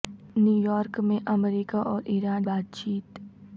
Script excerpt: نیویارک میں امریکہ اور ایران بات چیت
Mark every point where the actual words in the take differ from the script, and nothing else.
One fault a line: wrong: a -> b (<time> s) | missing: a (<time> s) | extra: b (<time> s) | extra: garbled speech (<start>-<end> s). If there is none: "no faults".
no faults